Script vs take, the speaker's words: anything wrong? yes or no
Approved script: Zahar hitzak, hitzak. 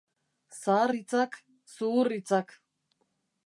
yes